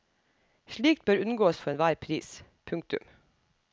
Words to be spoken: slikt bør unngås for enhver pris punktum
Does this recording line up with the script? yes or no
yes